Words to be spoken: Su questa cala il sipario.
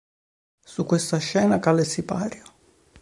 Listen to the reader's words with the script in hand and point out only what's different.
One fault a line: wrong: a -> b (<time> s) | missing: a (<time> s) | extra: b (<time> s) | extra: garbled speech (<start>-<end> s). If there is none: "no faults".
extra: scena (1.2 s)